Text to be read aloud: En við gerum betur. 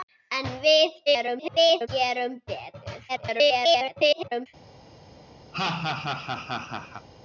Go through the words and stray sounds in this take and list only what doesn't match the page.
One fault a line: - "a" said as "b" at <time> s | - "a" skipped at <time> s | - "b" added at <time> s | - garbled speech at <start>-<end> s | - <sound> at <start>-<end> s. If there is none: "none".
- garbled speech at 1.1-1.9 s
- garbled speech at 3.1-4.5 s
- laugh at 5.5-7.1 s